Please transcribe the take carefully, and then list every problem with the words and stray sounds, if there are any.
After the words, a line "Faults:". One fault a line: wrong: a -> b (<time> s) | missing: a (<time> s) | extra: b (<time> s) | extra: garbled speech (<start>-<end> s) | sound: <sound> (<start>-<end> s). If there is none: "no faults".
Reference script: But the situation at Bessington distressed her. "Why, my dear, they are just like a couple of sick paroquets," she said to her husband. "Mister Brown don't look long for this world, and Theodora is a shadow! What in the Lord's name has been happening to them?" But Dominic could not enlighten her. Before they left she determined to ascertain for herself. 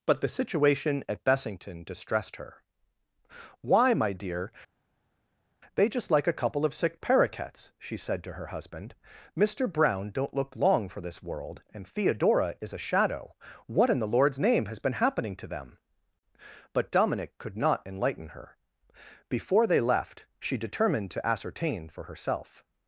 But the situation at Bessington distressed her. "Why, my dear, they just like a couple of sick paroquets," she said to her husband. "Mister Brown don't look long for this world, and Theodora is a shadow! What in the Lord's name has been happening to them?" But Dominic could not enlighten her. Before they left she determined to ascertain for herself.
Faults:
missing: are (5.9 s)